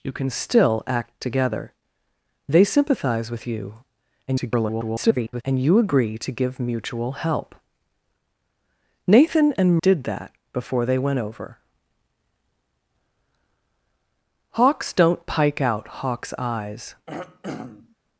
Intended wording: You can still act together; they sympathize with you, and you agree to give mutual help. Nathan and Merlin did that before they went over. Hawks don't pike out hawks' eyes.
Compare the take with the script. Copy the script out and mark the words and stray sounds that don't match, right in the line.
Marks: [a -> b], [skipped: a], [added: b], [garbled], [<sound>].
You can still act together; they sympathize with you, [garbled] and you agree to give mutual help. Nathan and [skipped: Merlin] did that before they went over. Hawks don't pike out hawks' eyes. [throat clearing]